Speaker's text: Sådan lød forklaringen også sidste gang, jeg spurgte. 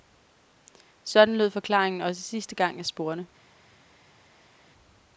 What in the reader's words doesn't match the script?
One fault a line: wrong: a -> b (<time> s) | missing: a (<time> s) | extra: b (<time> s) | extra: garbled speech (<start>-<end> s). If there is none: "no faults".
no faults